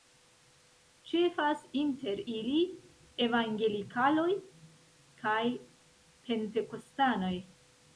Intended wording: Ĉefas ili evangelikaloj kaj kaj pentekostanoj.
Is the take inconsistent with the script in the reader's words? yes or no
yes